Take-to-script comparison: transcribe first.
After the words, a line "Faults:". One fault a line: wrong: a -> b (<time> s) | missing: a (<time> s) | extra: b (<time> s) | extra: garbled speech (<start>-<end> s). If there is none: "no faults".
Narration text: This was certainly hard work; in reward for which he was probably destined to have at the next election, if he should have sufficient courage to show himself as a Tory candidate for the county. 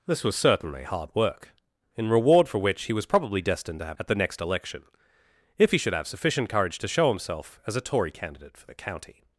This was certainly hard work; in reward for which he was probably destined to have at the next election, if he should have sufficient courage to show himself as a Tory candidate for the county.
Faults:
no faults